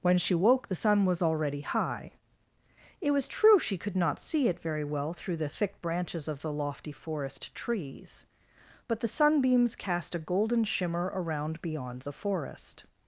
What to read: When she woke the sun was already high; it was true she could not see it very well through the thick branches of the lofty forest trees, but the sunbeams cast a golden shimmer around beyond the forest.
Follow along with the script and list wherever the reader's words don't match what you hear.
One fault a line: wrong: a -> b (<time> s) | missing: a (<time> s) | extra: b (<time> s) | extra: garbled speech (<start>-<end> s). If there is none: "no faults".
no faults